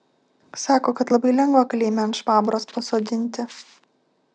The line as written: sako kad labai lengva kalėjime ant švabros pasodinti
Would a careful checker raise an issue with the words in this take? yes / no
no